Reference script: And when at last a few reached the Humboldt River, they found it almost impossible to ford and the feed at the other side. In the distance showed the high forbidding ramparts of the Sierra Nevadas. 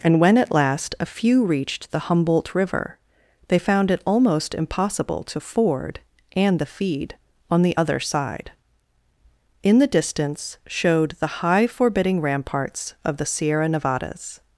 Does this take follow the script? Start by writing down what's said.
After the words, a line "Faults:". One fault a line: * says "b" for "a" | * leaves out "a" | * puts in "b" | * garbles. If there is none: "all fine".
And when at last a few reached the Humboldt River, they found it almost impossible to ford and the feed on the other side. In the distance showed the high forbidding ramparts of the Sierra Nevadas.
Faults:
* says "on" for "at"